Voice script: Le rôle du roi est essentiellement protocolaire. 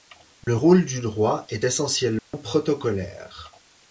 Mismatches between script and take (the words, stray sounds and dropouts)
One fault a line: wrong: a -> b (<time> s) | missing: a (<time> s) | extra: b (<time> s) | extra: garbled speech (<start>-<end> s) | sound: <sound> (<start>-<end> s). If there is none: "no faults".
sound: dropout (0.4-0.5 s)
sound: dropout (2.2-2.3 s)